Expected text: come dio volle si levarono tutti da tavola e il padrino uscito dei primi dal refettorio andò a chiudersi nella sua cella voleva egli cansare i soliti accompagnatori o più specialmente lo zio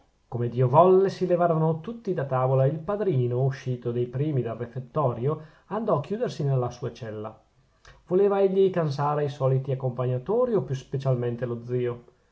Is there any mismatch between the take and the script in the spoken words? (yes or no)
no